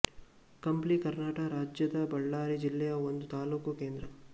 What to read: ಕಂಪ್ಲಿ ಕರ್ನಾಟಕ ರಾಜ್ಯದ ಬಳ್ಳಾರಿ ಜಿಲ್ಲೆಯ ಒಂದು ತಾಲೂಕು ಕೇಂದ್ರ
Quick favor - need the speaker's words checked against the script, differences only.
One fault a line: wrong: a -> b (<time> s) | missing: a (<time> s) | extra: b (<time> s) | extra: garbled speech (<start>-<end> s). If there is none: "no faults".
no faults